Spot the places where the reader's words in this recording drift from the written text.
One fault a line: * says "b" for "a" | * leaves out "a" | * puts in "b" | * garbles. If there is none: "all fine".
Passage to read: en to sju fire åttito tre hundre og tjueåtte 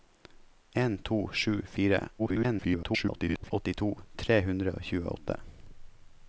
* garbles